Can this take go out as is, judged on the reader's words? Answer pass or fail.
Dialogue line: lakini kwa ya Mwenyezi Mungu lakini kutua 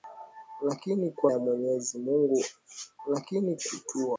pass